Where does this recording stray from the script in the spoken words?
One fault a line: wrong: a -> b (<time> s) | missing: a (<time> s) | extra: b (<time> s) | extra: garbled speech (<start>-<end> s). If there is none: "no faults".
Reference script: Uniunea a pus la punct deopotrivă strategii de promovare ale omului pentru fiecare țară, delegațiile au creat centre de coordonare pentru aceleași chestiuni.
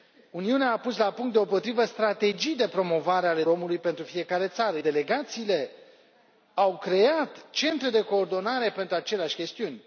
no faults